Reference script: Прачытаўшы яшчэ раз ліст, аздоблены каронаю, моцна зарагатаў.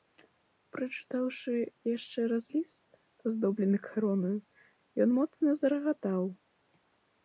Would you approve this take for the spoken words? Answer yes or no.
no